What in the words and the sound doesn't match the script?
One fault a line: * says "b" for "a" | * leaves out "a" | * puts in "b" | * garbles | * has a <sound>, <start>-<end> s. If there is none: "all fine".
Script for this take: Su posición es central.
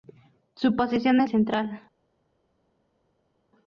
all fine